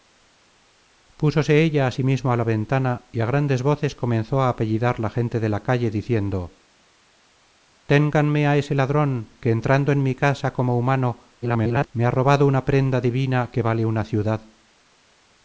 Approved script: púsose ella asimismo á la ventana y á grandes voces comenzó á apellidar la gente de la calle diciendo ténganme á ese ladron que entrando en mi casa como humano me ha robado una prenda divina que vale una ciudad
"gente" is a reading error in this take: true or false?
false